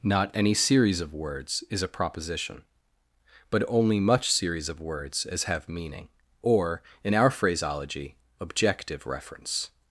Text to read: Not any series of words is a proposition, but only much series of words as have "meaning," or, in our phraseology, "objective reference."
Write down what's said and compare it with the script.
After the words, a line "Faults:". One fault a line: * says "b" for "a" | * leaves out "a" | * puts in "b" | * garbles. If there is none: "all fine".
Not any series of words is a proposition, but only much series of words as have "meaning," or, in our phraseology, "objective reference."
Faults:
all fine